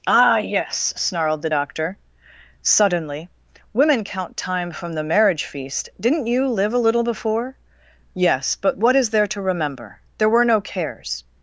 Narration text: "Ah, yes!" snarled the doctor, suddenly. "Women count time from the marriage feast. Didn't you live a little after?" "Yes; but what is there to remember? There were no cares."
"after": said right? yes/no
no